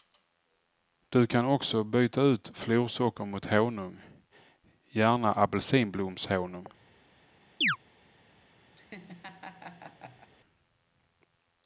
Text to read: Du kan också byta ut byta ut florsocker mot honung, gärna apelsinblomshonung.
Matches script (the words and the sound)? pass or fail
fail